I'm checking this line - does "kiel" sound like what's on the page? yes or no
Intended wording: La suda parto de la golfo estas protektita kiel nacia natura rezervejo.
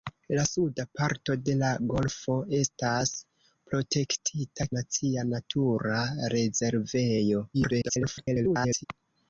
no